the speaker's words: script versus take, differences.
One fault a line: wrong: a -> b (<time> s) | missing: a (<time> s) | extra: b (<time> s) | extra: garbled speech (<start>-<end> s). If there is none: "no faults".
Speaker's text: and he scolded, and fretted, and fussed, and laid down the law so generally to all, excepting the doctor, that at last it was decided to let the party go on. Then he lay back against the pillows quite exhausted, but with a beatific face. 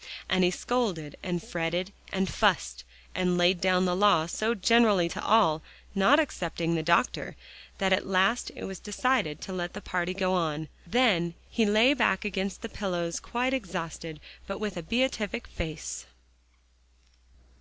extra: not (5.9 s)